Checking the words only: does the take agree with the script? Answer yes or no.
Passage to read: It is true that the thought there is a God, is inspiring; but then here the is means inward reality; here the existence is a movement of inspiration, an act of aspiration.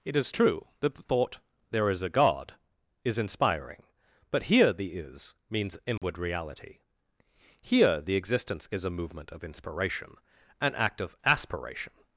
no